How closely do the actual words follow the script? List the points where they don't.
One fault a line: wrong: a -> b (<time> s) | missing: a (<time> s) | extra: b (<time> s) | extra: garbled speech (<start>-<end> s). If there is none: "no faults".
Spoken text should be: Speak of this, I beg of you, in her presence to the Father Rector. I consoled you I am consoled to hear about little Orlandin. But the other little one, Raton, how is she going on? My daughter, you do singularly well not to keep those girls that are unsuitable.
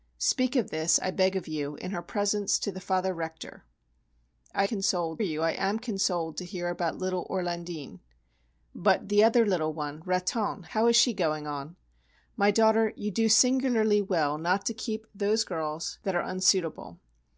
no faults